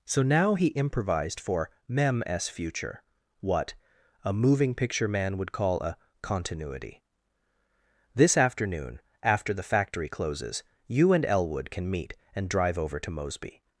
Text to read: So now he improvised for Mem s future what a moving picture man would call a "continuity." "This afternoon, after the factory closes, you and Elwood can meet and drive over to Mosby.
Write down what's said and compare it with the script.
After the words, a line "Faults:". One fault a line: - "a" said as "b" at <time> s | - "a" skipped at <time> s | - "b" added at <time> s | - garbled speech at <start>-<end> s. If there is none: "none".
So now he improvised for Mem s future what a moving picture man would call a "continuity." "This afternoon, after the factory closes, you and Elwood can meet and drive over to Mosby.
Faults:
none